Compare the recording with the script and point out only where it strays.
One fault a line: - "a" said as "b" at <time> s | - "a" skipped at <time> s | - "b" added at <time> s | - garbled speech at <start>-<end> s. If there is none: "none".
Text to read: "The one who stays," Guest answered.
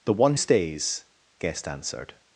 - "who" skipped at 0.3 s